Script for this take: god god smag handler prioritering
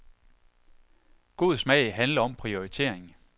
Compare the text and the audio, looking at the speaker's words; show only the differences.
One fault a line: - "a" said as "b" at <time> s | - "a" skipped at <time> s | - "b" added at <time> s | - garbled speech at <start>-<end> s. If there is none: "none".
- "god" skipped at 1.6 s
- "om" added at 2.2 s